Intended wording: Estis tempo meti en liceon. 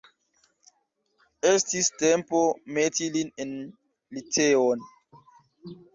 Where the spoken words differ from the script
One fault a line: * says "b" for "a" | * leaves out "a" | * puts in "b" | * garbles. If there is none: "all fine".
* puts in "lin"